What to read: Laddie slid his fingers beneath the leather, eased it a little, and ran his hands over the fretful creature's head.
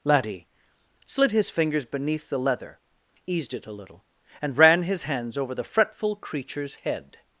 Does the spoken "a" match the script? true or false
true